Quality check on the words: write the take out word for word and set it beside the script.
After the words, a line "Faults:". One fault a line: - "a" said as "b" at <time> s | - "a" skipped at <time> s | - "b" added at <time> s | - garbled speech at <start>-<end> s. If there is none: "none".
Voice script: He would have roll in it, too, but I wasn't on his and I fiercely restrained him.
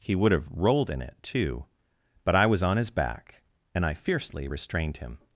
He would have rolled in it, too, but I was on his back and I fiercely restrained him.
Faults:
- "roll" said as "rolled" at 0.5 s
- "wasn't" said as "was" at 2.5 s
- "back" added at 2.9 s